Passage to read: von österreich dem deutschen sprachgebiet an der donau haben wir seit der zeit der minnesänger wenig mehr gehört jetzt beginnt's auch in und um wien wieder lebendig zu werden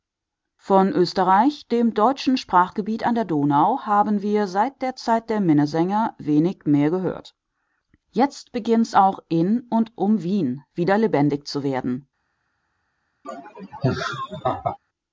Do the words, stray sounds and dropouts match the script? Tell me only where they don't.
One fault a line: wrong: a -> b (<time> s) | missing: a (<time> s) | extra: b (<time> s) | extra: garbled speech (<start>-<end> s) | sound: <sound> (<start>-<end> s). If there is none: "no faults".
sound: laugh (13.2-14.8 s)